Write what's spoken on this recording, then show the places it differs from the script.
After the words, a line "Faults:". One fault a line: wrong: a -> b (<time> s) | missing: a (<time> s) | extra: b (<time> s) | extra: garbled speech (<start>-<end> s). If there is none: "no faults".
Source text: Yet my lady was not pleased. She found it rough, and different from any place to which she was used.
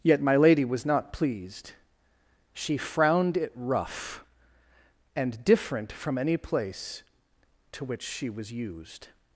Yet my lady was not pleased. She frowned it rough, and different from any place to which she was used.
Faults:
wrong: found -> frowned (2.8 s)